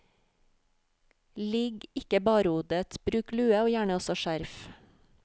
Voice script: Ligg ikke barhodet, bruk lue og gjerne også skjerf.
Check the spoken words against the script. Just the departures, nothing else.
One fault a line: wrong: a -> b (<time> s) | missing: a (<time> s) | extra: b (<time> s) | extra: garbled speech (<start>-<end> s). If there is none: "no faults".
no faults